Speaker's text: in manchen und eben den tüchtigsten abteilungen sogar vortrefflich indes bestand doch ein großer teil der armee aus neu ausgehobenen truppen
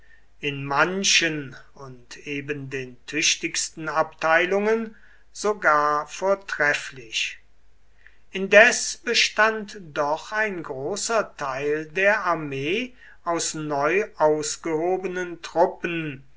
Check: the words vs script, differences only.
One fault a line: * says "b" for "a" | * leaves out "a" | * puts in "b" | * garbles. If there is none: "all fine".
all fine